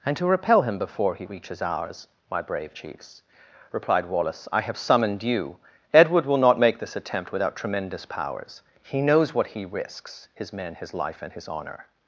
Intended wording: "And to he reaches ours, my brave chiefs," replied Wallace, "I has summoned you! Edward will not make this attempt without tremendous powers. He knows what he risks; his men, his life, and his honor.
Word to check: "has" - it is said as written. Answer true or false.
false